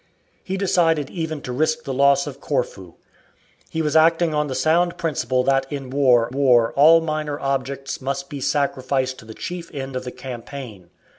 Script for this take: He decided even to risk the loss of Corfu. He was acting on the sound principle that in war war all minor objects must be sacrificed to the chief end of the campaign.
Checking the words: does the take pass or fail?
pass